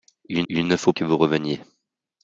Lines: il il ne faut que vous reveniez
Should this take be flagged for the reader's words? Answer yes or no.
no